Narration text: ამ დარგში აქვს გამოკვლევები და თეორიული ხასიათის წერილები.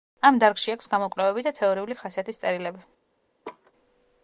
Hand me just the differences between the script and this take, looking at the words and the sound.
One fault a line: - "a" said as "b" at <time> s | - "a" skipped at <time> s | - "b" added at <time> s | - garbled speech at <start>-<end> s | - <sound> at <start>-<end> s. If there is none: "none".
- laugh at 3.4-3.7 s